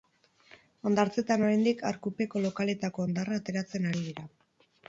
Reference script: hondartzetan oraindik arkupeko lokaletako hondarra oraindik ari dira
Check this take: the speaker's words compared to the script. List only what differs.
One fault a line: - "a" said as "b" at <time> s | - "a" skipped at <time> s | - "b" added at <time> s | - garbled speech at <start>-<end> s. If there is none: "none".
- "oraindik" said as "ateratzen" at 3.4 s